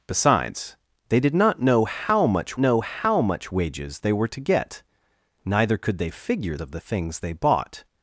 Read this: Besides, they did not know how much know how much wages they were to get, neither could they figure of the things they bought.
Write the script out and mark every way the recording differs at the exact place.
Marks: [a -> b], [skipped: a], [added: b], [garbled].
Besides, they did not know how much know how much wages they were to get, neither could they figure of the things they bought.